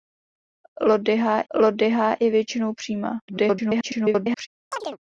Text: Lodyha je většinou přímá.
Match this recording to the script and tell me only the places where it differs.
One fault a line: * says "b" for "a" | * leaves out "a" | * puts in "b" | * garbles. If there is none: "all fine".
* puts in "lodyha"
* garbles